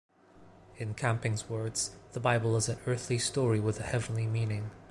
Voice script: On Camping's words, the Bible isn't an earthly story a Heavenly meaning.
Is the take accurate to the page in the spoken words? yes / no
no